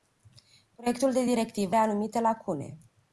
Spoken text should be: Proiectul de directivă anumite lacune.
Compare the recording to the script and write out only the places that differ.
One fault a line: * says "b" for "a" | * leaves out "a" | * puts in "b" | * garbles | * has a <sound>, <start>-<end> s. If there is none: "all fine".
all fine